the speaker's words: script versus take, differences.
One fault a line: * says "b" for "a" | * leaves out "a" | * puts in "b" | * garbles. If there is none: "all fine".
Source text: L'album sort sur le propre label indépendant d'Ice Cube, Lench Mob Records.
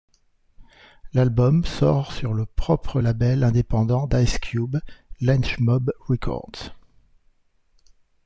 all fine